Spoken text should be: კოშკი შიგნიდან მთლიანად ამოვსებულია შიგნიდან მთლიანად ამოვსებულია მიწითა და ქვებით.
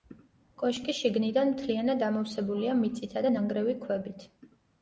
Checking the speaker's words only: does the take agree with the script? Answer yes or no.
no